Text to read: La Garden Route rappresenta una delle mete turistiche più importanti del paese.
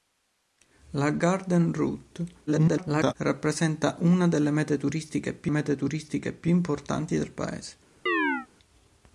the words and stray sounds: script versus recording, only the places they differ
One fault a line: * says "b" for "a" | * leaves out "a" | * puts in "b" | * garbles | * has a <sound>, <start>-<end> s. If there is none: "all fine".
* garbles
* puts in "mete turistiche più"
* has a chirp, 8.1-8.5 s